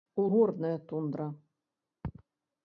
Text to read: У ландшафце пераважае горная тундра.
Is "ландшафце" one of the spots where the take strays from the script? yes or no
yes